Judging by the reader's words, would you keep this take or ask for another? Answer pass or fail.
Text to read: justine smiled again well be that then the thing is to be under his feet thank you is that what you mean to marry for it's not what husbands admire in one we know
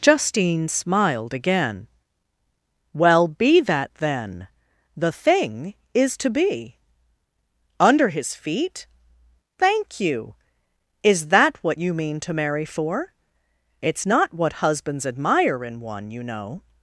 fail